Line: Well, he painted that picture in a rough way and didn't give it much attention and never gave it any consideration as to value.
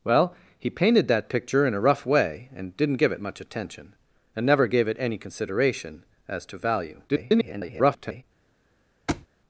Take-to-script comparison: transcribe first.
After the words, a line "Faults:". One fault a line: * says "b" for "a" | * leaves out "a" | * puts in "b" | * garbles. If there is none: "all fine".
Well, he painted that picture in a rough way and didn't give it much attention and never gave it any consideration as to value. [garbled]
Faults:
* garbles